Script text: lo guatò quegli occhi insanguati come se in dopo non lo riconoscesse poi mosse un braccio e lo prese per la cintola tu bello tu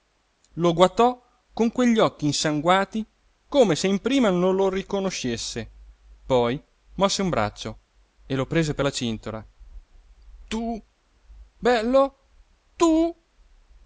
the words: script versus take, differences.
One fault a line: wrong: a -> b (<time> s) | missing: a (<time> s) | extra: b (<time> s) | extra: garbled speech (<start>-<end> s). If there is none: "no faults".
extra: con (1.5 s)
wrong: dopo -> prima (4.0 s)